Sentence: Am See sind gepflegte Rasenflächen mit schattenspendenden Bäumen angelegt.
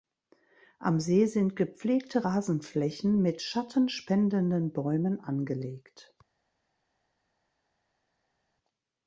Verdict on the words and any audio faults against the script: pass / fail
pass